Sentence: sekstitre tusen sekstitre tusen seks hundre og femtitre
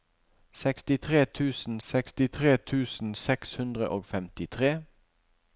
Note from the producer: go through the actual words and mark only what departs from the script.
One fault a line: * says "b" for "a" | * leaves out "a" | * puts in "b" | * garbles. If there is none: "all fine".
all fine